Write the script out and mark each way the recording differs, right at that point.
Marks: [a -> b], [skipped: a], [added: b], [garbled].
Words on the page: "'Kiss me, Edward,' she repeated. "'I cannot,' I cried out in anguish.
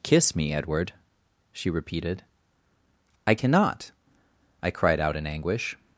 "'Kiss me, Edward,' she repeated. "'I cannot,' I cried out in anguish.